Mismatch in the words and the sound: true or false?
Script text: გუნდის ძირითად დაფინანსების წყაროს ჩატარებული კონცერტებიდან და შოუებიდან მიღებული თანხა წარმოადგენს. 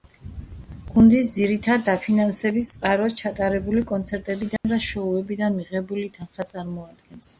true